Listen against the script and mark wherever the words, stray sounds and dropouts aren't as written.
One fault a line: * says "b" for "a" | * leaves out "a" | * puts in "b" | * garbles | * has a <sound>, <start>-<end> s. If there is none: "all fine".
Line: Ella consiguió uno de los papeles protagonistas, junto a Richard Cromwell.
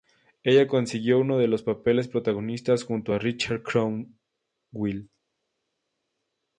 all fine